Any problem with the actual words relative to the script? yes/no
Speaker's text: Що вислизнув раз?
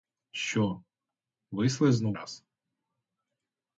no